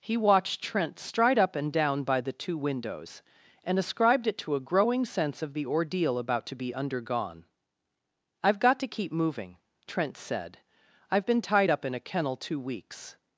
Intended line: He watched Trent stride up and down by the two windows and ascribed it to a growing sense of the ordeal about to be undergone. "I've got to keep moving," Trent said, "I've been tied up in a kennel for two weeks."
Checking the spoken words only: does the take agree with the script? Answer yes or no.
no